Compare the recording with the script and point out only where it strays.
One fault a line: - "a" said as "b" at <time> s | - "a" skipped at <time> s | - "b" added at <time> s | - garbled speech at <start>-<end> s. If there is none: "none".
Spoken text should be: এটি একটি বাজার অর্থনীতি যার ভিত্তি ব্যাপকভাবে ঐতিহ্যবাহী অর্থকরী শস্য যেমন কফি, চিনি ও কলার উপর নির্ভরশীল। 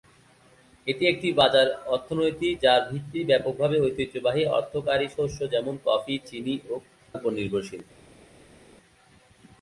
- "কলার" skipped at 6.7 s